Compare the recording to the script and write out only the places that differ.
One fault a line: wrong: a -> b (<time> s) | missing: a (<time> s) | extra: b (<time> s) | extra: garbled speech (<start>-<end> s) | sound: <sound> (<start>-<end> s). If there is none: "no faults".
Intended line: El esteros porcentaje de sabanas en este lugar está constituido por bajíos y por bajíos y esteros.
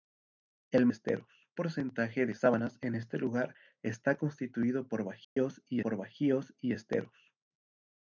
sound: dropout (5.2-5.4 s)